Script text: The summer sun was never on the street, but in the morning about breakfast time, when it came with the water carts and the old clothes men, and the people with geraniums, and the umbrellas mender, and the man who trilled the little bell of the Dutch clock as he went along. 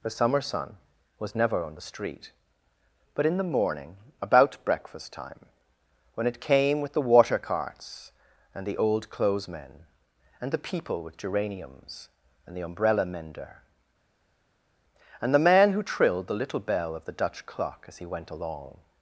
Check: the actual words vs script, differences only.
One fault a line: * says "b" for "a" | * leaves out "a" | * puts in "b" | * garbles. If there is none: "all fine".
* says "umbrella" for "umbrellas"